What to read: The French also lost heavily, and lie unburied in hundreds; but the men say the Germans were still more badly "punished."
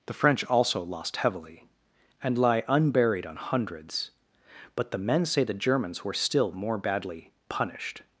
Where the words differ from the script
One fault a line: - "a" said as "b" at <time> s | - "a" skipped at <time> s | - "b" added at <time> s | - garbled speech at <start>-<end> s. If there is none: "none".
- "in" said as "on" at 3.2 s